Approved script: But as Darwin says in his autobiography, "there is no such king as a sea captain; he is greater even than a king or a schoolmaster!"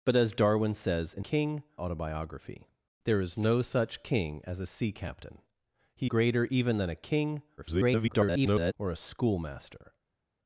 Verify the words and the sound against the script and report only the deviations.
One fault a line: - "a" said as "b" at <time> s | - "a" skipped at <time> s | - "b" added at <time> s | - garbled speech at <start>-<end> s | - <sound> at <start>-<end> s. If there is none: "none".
- "his" said as "king" at 1.2 s
- "is" skipped at 6.1 s
- garbled speech at 7.6-8.7 s